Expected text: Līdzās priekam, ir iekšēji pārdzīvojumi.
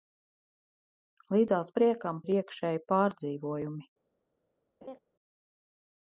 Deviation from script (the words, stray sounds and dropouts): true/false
true